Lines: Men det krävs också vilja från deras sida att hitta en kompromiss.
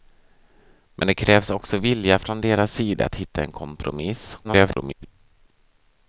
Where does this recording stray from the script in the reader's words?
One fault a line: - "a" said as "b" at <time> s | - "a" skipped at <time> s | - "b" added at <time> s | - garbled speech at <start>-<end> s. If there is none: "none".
- garbled speech at 4.4-5.1 s